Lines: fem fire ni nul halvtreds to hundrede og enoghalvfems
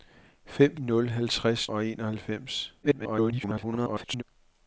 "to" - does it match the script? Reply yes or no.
no